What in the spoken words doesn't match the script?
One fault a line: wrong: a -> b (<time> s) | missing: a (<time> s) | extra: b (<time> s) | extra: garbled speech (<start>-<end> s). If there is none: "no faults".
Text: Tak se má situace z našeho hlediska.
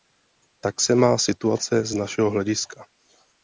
no faults